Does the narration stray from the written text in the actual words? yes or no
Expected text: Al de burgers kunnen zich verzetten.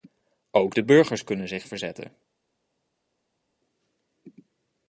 yes